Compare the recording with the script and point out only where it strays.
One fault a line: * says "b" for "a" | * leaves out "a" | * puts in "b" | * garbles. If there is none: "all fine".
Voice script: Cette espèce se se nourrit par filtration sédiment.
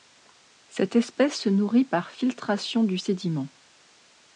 * leaves out "se"
* puts in "du"